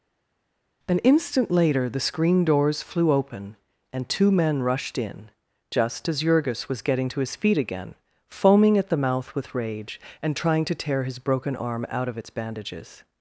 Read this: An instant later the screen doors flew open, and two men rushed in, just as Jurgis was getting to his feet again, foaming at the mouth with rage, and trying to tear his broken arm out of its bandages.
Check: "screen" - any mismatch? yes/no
no